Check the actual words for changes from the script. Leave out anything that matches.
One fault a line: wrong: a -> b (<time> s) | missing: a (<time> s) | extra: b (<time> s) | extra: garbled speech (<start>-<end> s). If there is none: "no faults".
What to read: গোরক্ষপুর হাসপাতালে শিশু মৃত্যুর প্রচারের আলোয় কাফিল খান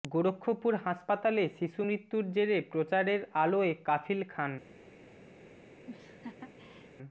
extra: জেরে (2.3 s)